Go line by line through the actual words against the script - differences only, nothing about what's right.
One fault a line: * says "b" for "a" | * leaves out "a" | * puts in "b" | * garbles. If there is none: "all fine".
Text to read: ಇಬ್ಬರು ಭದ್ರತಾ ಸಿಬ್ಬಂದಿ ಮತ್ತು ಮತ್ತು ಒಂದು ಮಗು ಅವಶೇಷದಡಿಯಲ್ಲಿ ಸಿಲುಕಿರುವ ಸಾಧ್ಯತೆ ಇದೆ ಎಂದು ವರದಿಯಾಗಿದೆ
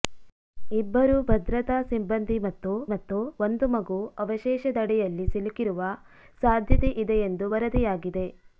all fine